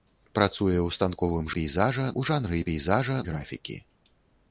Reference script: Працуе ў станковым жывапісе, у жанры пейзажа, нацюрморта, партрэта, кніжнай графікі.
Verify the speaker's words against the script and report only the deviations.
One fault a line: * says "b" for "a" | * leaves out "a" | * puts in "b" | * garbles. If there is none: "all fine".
* says "пейзажа" for "жывапісе"
* leaves out "нацюрморта партрэта кніжнай"